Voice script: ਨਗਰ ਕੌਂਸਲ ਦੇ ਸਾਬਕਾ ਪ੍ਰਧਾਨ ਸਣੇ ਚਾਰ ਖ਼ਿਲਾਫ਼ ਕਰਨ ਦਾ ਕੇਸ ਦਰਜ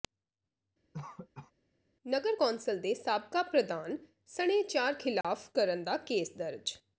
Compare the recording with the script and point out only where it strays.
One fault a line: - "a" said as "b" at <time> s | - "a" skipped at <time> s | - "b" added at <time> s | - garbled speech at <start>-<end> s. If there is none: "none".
none